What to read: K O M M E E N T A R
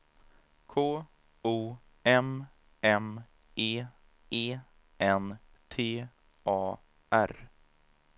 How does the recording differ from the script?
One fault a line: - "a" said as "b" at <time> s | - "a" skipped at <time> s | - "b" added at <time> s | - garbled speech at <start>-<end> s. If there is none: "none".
none